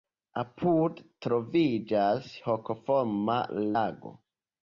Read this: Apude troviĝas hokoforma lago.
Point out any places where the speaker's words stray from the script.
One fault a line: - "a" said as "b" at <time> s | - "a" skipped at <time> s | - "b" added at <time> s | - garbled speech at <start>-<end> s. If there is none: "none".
none